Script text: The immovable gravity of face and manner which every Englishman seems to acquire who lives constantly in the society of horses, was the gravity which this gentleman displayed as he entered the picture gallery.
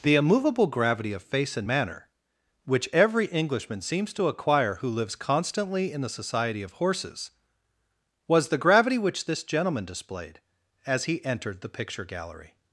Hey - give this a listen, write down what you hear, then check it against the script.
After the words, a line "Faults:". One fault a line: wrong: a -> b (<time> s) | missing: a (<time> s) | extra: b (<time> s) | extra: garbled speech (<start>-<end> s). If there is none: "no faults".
The immovable gravity of face and manner which every Englishman seems to acquire who lives constantly in the society of horses, was the gravity which this gentleman displayed as he entered the picture gallery.
Faults:
no faults